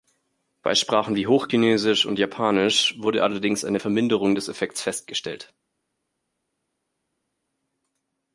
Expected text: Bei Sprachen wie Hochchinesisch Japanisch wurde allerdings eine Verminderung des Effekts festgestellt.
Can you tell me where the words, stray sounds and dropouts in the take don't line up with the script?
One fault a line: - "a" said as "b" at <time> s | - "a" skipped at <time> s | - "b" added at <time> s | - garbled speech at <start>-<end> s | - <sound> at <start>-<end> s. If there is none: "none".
- "und" added at 2.1 s